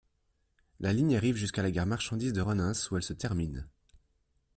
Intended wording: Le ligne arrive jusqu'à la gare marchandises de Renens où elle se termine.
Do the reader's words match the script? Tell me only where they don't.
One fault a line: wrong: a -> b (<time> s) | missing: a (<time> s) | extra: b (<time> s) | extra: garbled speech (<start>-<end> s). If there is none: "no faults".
wrong: Le -> La (0.8 s)